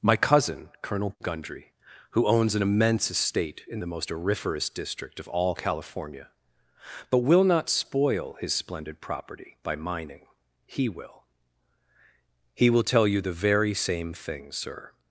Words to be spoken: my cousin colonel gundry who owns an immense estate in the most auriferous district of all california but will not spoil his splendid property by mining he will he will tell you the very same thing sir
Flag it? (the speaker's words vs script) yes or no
no